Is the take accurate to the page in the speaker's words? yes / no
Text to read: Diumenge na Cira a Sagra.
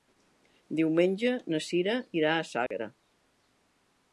no